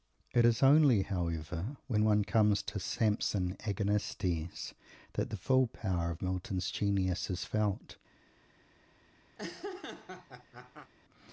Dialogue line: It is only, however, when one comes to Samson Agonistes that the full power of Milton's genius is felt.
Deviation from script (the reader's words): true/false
false